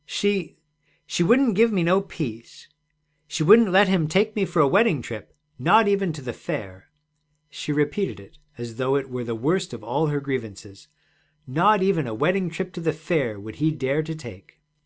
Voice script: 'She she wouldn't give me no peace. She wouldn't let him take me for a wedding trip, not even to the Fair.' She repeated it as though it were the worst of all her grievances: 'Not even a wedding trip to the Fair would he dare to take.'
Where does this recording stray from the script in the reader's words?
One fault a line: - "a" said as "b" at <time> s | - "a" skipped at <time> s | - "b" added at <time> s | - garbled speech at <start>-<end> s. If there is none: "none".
none